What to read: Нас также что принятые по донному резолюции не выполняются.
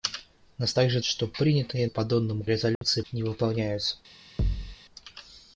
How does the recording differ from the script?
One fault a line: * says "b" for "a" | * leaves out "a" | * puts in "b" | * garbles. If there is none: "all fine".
all fine